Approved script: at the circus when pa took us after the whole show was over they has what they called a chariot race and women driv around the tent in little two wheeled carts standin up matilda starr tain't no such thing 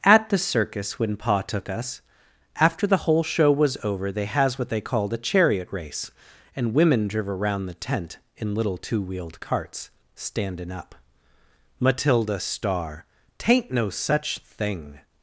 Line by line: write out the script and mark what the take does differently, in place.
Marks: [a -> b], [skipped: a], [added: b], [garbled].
at the circus when pa took us after the whole show was over they has what they called a chariot race and women driv around the tent in little two wheeled carts standin up matilda starr tain't no such thing